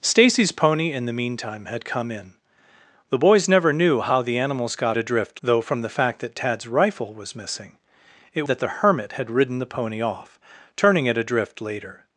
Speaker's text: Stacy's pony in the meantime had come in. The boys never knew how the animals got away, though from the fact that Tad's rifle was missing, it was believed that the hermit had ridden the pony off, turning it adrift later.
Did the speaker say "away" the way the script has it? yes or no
no